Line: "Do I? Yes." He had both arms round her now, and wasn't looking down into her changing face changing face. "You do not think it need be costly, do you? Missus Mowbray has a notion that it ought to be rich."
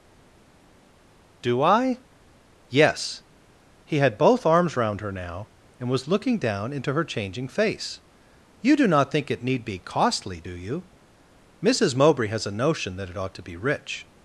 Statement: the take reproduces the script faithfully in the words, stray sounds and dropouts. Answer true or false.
false